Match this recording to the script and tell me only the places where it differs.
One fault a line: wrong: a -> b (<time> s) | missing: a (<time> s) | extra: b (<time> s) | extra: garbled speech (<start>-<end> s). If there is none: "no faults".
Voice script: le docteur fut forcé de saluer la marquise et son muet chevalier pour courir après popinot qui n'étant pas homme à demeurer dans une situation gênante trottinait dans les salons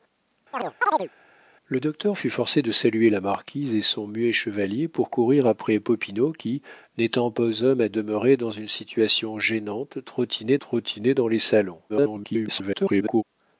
extra: trottinait (10.6 s)
extra: garbled speech (11.9-13.2 s)